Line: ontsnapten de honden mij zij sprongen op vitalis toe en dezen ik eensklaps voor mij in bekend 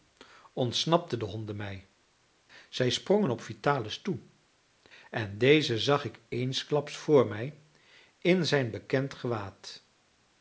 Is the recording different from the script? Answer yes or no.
yes